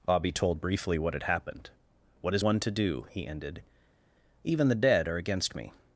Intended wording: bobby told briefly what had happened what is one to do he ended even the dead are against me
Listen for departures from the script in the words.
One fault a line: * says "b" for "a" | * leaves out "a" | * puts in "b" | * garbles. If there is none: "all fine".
all fine